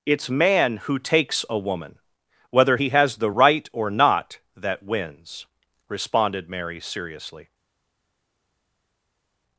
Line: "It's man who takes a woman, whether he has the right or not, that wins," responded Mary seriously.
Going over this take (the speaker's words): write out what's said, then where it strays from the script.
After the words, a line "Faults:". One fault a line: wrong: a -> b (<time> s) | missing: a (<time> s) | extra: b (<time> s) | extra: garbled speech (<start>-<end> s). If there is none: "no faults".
"It's man who takes a woman, whether he has the right or not, that wins," responded Mary seriously.
Faults:
no faults